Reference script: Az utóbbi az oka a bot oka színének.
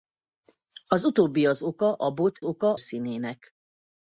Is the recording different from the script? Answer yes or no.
no